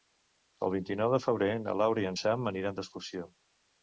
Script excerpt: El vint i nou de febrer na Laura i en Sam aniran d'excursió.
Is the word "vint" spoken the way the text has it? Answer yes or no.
yes